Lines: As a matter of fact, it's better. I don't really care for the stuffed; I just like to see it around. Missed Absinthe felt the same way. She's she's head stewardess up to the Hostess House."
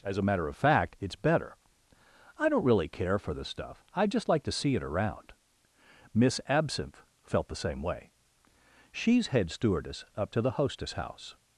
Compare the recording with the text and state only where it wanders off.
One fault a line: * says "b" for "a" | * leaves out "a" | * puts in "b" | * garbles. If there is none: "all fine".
* says "stuff" for "stuffed"
* says "Miss" for "Missed"
* leaves out "she's"